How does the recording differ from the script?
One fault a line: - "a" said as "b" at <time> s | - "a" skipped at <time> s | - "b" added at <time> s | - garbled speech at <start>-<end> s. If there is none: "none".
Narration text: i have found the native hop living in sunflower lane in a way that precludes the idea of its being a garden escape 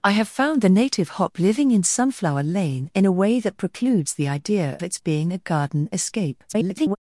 - "of" skipped at 4.8 s
- garbled speech at 6.5-7.0 s